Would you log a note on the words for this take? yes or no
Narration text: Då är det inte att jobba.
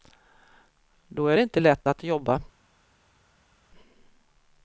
yes